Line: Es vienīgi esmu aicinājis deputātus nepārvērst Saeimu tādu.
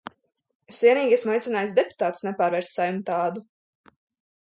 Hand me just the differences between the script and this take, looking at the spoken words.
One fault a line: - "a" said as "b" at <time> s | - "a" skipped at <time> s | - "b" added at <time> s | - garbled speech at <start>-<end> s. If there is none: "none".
none